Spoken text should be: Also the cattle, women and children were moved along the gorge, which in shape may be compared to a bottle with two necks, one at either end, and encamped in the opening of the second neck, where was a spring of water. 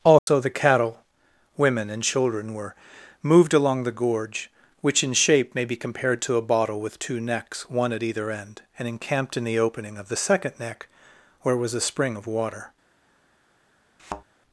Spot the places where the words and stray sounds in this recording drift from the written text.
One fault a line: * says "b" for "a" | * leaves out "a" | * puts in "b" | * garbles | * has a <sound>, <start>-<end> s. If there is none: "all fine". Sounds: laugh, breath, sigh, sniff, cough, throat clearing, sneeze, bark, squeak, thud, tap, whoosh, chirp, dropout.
* has a dropout, 0.2-0.3 s
* has a thud, 14.0-14.2 s